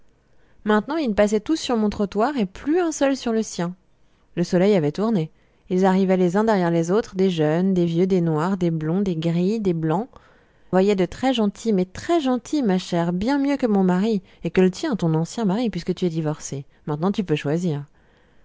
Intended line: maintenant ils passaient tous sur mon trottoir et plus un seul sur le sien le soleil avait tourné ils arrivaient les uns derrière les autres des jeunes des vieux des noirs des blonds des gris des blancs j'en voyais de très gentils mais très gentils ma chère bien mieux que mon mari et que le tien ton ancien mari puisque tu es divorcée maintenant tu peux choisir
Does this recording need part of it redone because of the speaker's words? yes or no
yes